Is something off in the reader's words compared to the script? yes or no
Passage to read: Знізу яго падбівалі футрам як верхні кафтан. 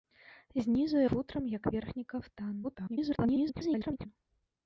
yes